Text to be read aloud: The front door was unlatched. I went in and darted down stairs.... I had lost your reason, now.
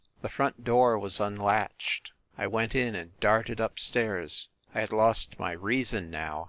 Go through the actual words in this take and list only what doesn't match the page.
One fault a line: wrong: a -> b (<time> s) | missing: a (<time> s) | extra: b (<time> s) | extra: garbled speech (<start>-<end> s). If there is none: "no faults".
wrong: down -> up (3.6 s)
wrong: your -> my (5.4 s)